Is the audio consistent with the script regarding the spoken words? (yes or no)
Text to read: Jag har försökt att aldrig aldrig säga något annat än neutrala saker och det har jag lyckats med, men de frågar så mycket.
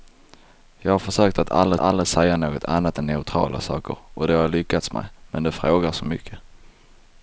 yes